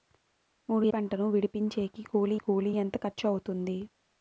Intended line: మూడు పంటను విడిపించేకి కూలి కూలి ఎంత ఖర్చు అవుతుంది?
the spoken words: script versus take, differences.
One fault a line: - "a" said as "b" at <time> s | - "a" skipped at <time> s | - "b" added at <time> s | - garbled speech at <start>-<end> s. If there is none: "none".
none